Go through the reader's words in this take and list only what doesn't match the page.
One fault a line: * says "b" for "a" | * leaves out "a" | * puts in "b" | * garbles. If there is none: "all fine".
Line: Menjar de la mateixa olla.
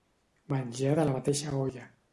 all fine